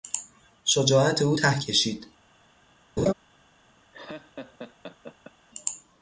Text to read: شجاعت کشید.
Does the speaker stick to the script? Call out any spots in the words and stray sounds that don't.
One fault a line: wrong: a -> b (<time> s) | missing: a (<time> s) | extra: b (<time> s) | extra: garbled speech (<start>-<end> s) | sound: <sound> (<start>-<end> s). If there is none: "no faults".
extra: او ته (1.2 s)
sound: laugh (3.0-3.1 s)
sound: laugh (3.9-5.3 s)